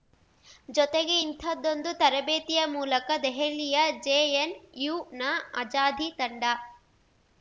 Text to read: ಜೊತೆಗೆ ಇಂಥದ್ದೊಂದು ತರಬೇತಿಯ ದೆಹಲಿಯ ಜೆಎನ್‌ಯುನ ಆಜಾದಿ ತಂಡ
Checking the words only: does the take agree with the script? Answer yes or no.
no